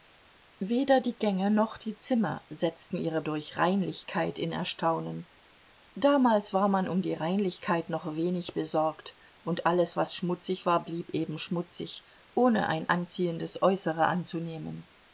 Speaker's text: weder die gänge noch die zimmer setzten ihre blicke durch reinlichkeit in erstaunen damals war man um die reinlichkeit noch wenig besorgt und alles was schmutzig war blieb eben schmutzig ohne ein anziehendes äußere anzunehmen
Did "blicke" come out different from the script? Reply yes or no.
yes